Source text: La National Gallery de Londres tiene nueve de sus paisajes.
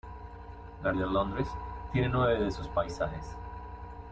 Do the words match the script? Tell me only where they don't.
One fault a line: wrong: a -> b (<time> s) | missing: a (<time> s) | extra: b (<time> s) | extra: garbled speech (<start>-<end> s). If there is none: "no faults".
missing: National Gallery (0.9 s)